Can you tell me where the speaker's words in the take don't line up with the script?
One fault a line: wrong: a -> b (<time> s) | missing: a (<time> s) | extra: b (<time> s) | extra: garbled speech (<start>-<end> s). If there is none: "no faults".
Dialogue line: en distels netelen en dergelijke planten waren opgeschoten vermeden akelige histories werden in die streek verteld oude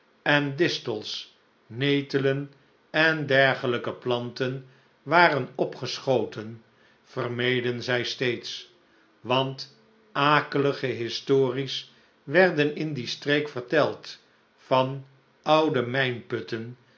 extra: zij steeds want (7.8 s)
extra: van (14.5 s)